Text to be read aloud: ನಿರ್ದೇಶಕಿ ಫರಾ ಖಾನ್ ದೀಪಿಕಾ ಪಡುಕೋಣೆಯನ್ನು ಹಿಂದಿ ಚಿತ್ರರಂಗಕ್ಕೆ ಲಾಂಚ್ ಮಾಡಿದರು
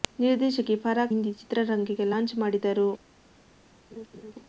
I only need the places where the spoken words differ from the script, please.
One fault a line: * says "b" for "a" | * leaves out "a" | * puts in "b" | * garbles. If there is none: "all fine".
* leaves out "ಖಾನ್ ದೀಪಿಕಾ ಪಡುಕೋಣೆಯನ್ನು"